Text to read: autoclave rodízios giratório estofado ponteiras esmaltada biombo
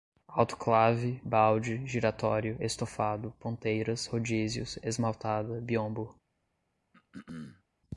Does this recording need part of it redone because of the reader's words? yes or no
yes